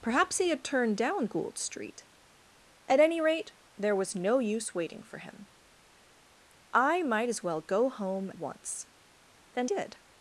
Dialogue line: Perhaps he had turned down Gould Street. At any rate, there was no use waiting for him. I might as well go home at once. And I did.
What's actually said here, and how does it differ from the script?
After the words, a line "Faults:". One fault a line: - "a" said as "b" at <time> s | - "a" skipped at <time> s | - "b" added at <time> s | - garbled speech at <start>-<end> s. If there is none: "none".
Perhaps he had turned down Gould Street. At any rate, there was no use waiting for him. I might as well go home once. And did.
Faults:
- "at" skipped at 8.3 s
- "I" skipped at 9.7 s